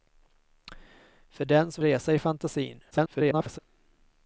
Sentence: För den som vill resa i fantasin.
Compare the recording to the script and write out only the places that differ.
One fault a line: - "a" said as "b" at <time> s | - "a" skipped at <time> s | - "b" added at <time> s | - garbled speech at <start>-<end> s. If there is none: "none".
- "vill" skipped at 1.8 s
- garbled speech at 2.9-3.6 s